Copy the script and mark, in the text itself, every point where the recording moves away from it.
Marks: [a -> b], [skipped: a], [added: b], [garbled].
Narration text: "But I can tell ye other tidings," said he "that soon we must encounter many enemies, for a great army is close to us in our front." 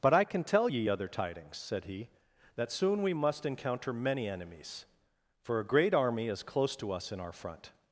"But I can tell ye other tidings," said he "that soon we must encounter many enemies, for a great army is close to us in our front."